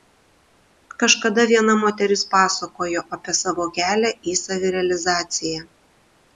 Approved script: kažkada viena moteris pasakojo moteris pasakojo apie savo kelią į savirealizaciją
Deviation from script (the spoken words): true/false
true